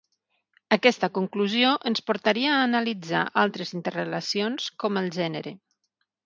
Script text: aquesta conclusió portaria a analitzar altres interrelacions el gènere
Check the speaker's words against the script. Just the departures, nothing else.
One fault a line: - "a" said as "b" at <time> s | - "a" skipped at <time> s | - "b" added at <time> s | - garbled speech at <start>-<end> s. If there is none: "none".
- "ens" added at 1.9 s
- "com" added at 4.8 s